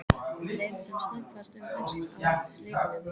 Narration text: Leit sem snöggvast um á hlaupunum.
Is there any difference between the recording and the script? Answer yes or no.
yes